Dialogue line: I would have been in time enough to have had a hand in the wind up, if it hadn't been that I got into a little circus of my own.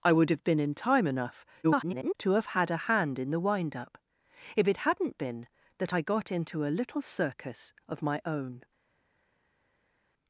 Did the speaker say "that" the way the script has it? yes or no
yes